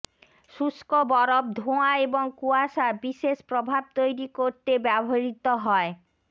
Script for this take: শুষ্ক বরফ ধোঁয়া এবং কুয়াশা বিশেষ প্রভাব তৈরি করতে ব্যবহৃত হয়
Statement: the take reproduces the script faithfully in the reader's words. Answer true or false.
true